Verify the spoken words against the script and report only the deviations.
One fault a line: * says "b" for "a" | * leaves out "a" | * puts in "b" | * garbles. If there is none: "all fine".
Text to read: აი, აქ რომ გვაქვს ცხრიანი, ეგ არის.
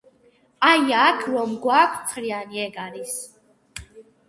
all fine